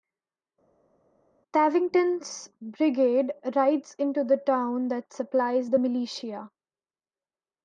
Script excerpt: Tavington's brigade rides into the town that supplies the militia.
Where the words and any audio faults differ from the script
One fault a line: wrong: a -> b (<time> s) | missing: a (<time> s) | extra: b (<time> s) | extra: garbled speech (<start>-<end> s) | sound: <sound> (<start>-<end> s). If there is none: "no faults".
no faults